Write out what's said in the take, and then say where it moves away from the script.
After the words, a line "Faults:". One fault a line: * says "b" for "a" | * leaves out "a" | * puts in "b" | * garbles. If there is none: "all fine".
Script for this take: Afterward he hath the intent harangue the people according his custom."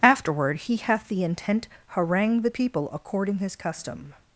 Afterward he hath the intent harangue the people according his custom."
Faults:
all fine